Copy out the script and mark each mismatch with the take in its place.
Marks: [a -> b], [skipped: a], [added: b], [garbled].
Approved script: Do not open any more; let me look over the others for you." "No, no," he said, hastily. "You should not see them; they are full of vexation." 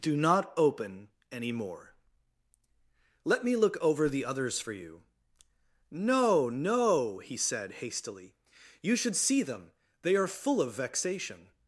Do not open any more; let me look over the others for you." "No, no," he said, hastily. "You should [skipped: not] see them; they are full of vexation."